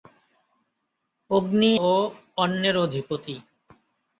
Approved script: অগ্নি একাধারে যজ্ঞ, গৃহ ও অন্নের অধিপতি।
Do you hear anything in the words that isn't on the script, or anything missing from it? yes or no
yes